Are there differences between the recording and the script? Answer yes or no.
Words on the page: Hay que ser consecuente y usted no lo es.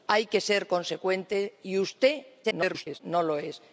yes